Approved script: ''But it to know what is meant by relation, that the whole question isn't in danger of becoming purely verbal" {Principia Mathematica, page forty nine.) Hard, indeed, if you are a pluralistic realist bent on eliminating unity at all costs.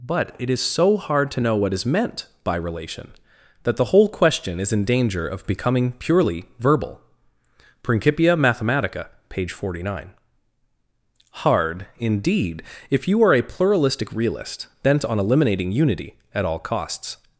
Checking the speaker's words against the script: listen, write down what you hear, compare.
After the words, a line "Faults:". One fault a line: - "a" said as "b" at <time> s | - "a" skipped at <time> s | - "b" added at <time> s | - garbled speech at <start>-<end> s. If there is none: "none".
''But it is so hard to know what is meant by relation, that the whole question is in danger of becoming purely verbal" {Principia Mathematica, page forty nine.) Hard, indeed, if you are a pluralistic realist bent on eliminating unity at all costs.
Faults:
- "is so hard" added at 0.5 s
- "isn't" said as "is" at 4.6 s